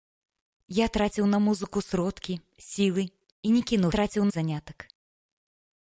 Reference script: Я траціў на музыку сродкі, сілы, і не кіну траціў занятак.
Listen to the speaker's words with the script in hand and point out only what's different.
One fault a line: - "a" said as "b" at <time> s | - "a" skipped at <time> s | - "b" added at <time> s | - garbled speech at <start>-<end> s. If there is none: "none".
none